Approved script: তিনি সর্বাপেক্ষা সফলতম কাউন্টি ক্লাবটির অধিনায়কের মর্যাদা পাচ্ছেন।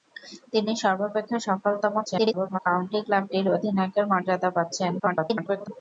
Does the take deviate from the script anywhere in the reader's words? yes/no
yes